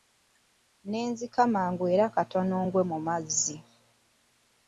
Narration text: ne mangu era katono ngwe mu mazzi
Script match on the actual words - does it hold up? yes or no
no